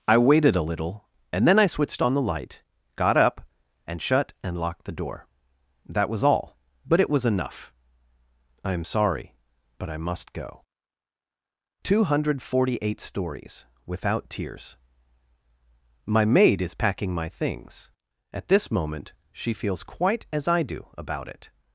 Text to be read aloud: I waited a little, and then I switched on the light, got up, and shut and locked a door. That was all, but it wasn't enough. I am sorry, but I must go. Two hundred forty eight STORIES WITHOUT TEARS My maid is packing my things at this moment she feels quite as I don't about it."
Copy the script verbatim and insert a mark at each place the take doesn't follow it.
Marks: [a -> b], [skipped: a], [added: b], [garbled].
I waited a little, and then I switched on the light, got up, and shut and locked [a -> the] door. That was all, but it [wasn't -> was] enough. I am sorry, but I must go. Two hundred forty eight STORIES WITHOUT TEARS My maid is packing my things at this moment she feels quite as I [don't -> do] about it."